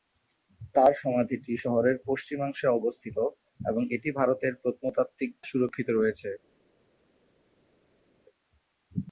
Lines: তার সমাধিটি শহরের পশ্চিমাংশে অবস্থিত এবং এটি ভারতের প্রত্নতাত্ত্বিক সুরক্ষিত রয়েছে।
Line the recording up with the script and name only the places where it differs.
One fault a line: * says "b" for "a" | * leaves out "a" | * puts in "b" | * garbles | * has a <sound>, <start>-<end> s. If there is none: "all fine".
all fine